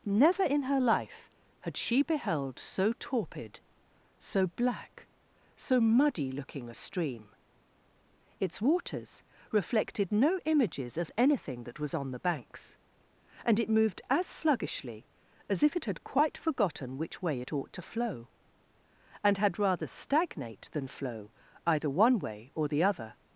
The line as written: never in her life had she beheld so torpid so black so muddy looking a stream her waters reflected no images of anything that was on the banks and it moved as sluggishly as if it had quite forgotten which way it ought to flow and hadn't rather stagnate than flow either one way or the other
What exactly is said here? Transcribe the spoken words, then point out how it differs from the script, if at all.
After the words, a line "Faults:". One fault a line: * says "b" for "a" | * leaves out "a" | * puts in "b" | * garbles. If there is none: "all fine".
never in her life had she beheld so torpid so black so muddy looking a stream its waters reflected no images of anything that was on the banks and it moved as sluggishly as if it had quite forgotten which way it ought to flow and had rather stagnate than flow either one way or the other
Faults:
* says "its" for "her"
* says "had" for "hadn't"